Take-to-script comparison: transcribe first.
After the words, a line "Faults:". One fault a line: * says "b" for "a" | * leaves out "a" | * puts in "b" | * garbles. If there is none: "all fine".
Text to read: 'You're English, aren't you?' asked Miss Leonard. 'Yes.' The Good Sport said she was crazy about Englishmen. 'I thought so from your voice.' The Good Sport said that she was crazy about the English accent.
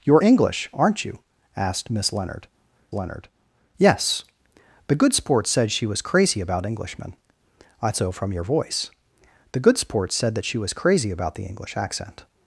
'You're English, aren't you?' asked Miss Leonard Leonard. 'Yes.' The Good Sport said she was crazy about Englishmen. 'I so from your voice.' The Good Sport said that she was crazy about the English accent.
Faults:
* puts in "Leonard"
* leaves out "thought"